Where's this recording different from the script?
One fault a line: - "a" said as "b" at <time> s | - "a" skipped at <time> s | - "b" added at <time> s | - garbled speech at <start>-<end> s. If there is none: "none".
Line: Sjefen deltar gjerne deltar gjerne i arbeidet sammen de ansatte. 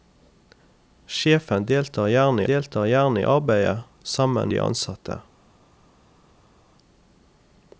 none